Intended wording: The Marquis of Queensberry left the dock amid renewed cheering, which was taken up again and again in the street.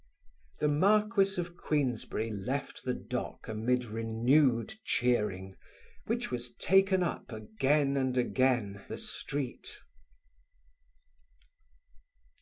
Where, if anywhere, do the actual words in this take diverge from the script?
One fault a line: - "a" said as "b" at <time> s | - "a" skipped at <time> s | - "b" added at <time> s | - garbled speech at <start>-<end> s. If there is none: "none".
- "in" skipped at 8.8 s